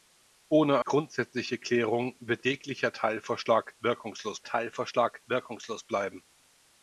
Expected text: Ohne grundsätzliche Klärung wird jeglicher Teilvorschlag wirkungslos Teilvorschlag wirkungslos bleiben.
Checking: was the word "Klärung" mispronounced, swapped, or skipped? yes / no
no